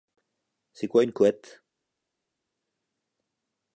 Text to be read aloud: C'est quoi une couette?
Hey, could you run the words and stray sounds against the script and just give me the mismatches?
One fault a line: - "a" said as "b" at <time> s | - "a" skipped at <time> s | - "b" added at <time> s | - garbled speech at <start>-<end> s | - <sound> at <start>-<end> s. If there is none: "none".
none